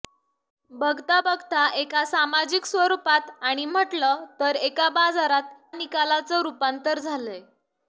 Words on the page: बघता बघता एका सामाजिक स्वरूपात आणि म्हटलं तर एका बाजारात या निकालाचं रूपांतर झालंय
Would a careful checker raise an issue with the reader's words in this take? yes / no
yes